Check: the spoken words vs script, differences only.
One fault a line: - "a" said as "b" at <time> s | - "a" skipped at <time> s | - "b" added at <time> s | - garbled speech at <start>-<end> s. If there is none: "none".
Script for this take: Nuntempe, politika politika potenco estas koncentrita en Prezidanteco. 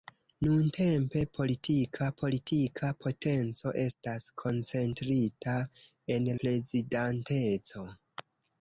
none